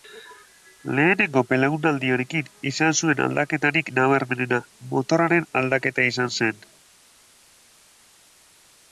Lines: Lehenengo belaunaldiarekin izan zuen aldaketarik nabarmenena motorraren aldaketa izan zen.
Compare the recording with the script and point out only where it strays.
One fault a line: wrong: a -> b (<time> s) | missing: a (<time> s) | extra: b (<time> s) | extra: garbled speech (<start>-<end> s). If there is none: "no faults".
no faults